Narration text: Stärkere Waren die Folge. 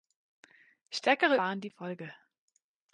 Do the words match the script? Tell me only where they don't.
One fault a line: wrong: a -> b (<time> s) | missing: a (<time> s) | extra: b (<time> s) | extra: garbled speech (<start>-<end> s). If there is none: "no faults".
no faults